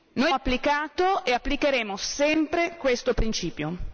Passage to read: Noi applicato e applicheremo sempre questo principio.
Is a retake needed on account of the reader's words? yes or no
no